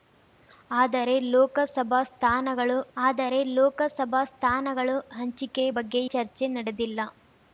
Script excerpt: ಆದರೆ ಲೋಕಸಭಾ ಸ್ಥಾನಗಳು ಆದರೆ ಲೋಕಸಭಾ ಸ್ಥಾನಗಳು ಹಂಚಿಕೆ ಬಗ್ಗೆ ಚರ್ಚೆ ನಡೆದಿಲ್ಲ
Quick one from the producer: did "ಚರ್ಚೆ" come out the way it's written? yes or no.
yes